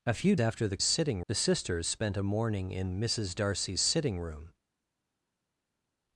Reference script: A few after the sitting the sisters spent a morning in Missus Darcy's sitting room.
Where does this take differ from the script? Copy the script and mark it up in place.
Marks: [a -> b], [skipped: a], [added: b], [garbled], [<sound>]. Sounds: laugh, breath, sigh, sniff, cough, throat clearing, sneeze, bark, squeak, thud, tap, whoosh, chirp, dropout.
A few after the sitting the sisters spent a morning in Missus Darcy's sitting room.